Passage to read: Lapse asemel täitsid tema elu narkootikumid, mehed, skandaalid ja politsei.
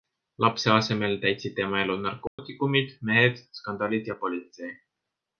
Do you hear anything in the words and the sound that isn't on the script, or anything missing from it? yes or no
yes